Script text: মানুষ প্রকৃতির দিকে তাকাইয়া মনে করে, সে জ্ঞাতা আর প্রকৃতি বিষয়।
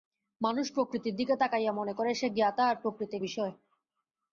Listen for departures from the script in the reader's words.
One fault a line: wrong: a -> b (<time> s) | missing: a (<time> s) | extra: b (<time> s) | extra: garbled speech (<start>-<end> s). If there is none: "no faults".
no faults